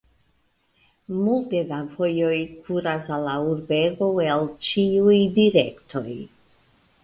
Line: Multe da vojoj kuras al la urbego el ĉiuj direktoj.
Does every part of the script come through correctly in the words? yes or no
yes